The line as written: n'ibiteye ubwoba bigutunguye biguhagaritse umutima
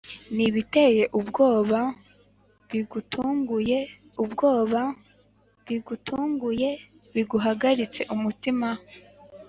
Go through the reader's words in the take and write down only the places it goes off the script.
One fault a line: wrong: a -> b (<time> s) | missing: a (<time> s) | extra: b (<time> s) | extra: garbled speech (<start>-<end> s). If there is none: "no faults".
extra: ubwoba bigutunguye (4.2 s)